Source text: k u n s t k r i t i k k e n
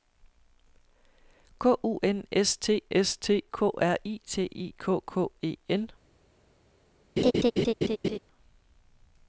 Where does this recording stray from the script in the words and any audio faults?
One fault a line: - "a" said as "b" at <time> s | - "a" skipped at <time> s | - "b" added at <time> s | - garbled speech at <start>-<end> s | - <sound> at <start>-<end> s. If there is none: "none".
- "s t" added at 2.9 s
- laugh at 7.2-8.2 s